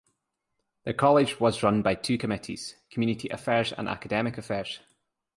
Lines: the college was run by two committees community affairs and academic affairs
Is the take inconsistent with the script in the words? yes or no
no